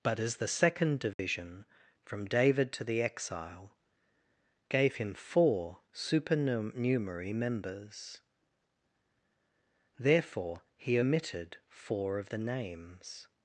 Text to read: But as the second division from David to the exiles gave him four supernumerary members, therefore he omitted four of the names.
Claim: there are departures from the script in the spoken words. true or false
true